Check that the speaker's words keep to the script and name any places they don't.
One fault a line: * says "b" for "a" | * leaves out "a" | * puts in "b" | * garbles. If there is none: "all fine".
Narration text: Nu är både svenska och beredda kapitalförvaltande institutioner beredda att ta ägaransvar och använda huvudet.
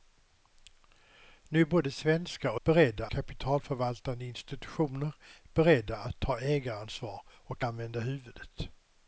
all fine